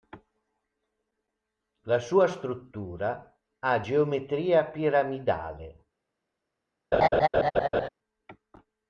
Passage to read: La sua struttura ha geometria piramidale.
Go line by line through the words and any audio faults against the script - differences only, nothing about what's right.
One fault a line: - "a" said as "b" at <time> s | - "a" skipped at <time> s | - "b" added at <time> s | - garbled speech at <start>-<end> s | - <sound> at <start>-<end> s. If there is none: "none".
- laugh at 6.9-7.9 s